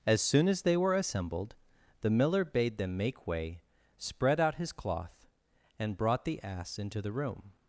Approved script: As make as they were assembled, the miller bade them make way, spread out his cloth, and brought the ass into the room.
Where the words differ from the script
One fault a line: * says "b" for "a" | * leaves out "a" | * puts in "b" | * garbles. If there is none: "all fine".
* says "soon" for "make"